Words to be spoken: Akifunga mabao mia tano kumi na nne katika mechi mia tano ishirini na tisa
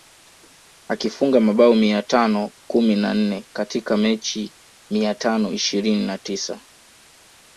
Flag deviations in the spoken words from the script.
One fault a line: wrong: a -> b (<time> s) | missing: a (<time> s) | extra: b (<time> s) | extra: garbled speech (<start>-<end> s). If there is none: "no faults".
no faults